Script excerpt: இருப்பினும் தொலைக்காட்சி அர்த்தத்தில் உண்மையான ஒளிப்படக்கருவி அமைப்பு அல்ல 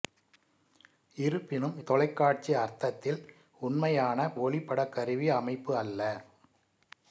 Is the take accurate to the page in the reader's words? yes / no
yes